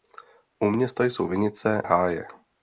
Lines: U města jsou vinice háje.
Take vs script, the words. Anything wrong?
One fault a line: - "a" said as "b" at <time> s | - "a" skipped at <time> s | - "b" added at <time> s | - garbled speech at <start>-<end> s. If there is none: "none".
none